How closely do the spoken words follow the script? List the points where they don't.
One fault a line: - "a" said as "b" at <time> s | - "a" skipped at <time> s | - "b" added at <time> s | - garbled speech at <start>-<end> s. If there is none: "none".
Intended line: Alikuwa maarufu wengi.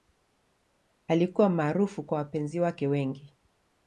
- "kwa wapenzi wake" added at 2.0 s